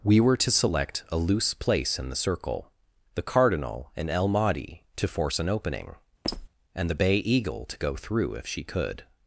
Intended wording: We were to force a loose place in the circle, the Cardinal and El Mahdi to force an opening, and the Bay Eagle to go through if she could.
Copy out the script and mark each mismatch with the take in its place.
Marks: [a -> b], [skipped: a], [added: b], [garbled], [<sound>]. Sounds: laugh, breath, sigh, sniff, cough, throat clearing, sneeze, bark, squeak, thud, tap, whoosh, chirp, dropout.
We were to [force -> select] a loose place in the circle, the Cardinal and El Mahdi to force an opening, [squeak] and the Bay Eagle to go through if she could.